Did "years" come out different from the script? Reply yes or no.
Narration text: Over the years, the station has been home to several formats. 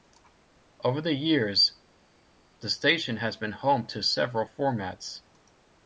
no